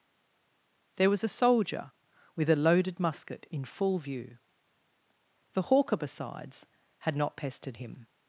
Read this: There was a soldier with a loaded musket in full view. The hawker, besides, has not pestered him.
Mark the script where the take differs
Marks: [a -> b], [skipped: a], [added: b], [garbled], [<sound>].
There was a soldier with a loaded musket in full view. The hawker, besides, [has -> had] not pestered him.